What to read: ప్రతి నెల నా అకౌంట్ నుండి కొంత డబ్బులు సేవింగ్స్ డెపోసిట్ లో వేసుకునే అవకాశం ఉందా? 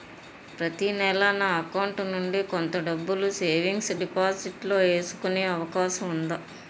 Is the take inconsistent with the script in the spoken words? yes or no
no